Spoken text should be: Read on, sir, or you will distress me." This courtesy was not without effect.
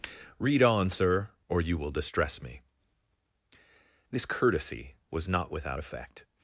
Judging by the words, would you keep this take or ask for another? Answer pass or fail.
pass